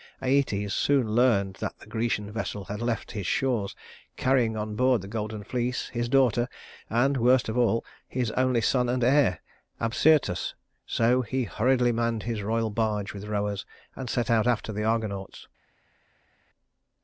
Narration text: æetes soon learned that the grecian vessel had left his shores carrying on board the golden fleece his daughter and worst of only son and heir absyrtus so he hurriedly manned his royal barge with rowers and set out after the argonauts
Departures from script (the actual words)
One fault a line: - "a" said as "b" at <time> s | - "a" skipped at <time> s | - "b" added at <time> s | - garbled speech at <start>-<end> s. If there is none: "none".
- "all his" added at 7.5 s